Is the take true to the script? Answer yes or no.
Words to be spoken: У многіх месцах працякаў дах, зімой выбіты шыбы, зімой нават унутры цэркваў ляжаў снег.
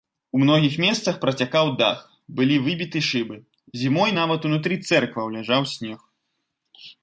no